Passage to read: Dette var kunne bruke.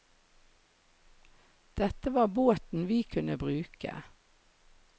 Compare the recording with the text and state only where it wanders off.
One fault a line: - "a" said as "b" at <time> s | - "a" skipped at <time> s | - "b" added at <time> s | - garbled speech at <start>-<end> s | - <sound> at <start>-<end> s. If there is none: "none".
- "båten vi" added at 2.3 s